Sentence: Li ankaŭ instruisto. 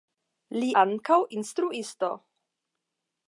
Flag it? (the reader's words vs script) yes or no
no